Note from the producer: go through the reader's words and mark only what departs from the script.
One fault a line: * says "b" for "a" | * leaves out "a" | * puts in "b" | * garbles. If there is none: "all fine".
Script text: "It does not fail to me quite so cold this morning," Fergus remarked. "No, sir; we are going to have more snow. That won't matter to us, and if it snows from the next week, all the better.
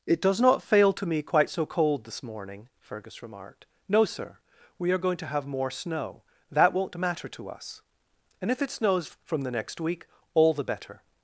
all fine